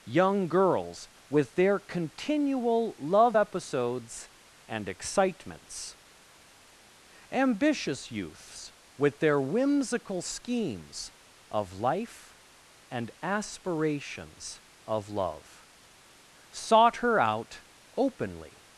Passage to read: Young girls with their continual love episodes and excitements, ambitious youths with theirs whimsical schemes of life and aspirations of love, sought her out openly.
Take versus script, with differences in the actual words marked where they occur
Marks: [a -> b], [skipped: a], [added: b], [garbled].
Young girls with their continual love episodes and excitements, ambitious youths with [theirs -> their] whimsical schemes of life and aspirations of love, sought her out openly.